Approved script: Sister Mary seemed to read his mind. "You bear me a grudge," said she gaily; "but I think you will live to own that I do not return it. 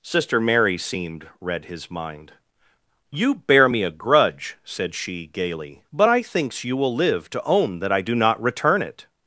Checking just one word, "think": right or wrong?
wrong